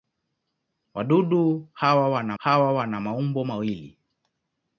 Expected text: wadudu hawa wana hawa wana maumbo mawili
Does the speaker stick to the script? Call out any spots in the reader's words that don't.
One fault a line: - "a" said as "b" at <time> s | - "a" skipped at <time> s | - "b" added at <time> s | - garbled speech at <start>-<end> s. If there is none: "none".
none